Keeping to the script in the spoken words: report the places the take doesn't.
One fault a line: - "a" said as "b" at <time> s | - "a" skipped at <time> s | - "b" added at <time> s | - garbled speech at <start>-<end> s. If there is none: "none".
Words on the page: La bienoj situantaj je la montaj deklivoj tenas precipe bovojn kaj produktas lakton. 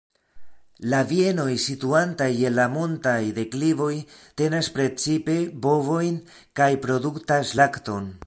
none